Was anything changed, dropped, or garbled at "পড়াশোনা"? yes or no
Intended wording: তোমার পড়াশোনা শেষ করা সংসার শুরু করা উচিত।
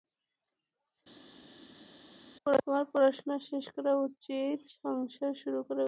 no